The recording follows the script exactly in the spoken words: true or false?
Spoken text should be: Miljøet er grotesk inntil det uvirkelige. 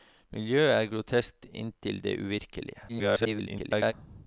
false